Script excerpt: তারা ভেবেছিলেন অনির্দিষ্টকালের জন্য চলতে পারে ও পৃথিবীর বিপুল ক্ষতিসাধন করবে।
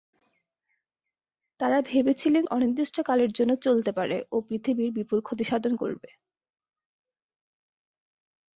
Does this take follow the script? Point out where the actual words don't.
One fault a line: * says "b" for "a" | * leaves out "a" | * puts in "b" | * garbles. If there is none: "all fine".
all fine